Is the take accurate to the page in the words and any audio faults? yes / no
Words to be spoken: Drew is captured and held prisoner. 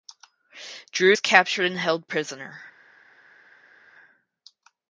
yes